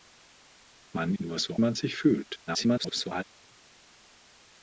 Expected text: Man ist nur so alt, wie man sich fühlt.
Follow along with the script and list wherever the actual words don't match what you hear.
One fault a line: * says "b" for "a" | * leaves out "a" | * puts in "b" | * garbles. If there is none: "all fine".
* leaves out "ist"
* leaves out "alt wie"
* garbles